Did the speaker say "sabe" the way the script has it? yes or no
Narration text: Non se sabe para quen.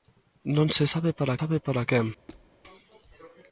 yes